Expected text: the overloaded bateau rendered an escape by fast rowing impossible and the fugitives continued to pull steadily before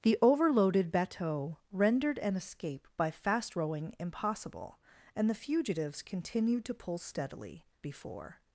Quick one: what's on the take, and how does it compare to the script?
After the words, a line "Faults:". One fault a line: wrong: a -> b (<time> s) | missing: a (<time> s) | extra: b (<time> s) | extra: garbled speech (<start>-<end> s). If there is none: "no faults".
the overloaded bateau rendered an escape by fast rowing impossible and the fugitives continued to pull steadily before
Faults:
no faults